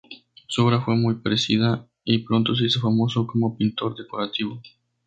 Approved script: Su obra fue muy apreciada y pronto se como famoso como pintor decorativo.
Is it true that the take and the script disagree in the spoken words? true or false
true